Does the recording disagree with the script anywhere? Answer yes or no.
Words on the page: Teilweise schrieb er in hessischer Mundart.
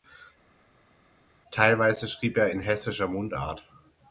no